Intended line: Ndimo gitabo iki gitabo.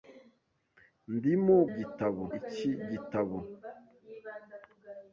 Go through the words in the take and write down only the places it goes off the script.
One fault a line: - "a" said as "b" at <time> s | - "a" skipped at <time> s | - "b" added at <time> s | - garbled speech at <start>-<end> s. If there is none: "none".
none